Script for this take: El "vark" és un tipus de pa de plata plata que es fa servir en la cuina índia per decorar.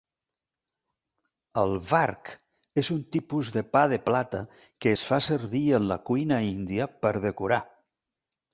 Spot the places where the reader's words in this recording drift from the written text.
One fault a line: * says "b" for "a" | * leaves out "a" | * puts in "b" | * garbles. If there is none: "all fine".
* leaves out "plata"